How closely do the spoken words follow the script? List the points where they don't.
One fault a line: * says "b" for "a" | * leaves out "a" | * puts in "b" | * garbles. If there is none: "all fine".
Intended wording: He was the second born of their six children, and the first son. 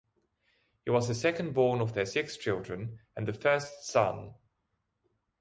all fine